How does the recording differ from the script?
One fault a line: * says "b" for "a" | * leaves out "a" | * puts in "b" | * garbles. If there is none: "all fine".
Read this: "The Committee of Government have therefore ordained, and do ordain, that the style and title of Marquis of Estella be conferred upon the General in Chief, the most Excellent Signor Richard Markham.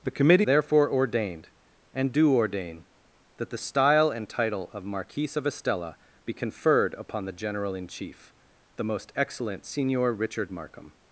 * leaves out "of Government have"